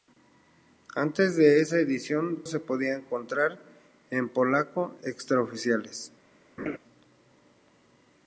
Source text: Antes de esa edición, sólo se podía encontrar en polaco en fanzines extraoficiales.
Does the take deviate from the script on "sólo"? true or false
true